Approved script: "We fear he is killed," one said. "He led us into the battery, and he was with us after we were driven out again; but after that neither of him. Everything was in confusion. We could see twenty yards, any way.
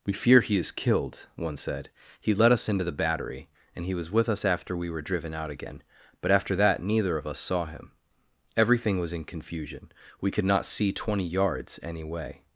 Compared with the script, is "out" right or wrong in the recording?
right